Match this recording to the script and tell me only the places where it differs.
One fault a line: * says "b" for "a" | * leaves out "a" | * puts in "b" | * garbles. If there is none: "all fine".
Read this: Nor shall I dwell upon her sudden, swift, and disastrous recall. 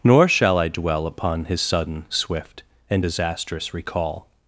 * says "his" for "her"